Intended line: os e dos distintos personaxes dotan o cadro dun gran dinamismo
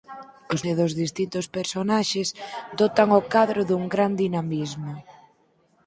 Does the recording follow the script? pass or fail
pass